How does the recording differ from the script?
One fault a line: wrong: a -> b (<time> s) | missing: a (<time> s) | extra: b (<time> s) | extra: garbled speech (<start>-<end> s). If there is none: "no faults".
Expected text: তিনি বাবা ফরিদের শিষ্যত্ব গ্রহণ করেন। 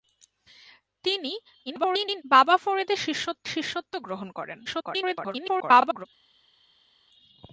extra: garbled speech (1.7-2.2 s)
extra: শিষ্যত্ব (3.5 s)
extra: garbled speech (4.7-6.1 s)